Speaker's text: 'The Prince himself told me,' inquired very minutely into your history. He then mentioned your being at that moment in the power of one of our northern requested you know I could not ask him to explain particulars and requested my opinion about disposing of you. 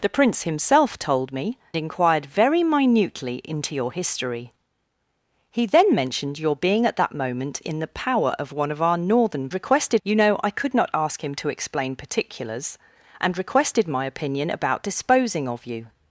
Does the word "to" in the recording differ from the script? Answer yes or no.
no